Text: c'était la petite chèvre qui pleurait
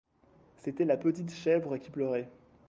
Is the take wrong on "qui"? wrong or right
right